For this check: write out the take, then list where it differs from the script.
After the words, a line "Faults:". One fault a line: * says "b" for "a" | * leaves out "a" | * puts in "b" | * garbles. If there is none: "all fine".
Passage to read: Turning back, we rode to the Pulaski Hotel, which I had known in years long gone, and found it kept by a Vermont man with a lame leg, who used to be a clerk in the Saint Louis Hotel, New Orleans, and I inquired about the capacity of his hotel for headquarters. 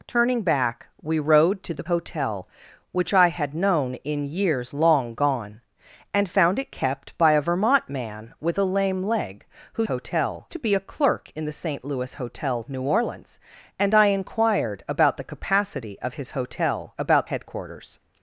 Turning back, we rode to the Hotel, which I had known in years long gone, and found it kept by a Vermont man with a lame leg, who hotel to be a clerk in the Saint Louis Hotel, New Orleans, and I inquired about the capacity of his hotel about headquarters.
Faults:
* leaves out "Pulaski"
* says "hotel" for "used"
* says "about" for "for"